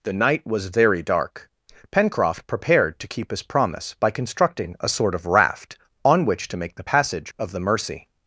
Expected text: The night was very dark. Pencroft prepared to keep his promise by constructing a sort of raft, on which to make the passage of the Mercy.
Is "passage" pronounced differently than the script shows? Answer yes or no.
no